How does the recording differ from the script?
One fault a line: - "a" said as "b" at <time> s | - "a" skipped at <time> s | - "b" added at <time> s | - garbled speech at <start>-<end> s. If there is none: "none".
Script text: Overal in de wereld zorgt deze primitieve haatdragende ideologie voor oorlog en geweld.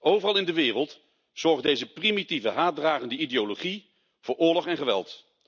none